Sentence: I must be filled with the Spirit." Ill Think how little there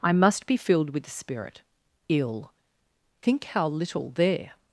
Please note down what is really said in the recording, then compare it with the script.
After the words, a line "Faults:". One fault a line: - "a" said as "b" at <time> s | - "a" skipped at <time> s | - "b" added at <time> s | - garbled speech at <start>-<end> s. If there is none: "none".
I must be filled with the Spirit." Ill Think how little there
Faults:
none